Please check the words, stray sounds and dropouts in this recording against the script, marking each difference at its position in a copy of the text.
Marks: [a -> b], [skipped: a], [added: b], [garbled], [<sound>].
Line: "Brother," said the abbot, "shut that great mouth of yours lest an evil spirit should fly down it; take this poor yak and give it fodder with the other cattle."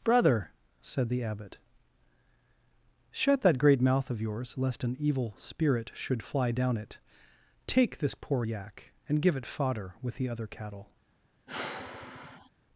"Brother," said the abbot, "shut that great mouth of yours lest an evil spirit should fly down it; take this poor yak and give it fodder with the other cattle." [sigh]